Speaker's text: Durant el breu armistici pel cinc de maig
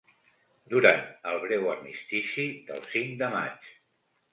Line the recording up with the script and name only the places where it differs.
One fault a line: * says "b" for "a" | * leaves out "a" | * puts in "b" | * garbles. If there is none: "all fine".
* says "del" for "pel"